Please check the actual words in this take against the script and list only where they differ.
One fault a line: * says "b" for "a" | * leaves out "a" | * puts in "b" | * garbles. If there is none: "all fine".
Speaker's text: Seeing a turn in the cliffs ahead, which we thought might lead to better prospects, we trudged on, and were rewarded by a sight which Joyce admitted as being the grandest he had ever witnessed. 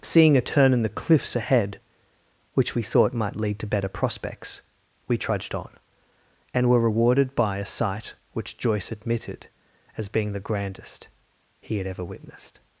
all fine